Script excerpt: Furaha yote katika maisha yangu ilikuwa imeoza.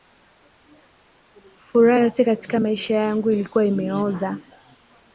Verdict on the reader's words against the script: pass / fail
pass